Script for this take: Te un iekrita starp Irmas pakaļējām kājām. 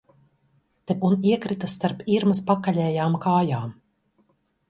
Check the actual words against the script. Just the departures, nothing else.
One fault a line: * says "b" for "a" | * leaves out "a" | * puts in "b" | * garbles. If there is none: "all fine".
all fine